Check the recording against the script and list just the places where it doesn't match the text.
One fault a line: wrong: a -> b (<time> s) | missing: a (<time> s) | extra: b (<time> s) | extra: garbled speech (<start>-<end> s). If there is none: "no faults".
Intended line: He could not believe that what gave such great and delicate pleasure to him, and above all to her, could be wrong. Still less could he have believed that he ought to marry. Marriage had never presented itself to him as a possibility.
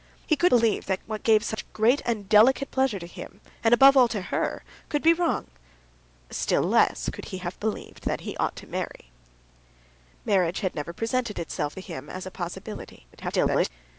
missing: not (0.5 s)
extra: garbled speech (13.1-13.7 s)